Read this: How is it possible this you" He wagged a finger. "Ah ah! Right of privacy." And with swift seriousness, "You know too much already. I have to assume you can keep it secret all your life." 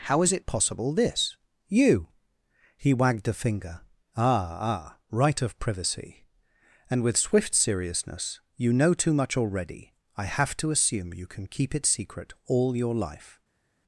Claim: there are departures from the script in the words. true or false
false